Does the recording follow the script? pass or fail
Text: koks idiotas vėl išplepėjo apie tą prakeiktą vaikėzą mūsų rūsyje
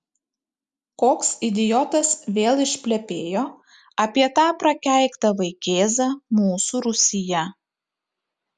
pass